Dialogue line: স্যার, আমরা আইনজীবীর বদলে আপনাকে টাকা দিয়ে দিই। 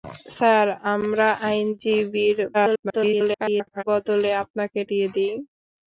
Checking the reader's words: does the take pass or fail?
fail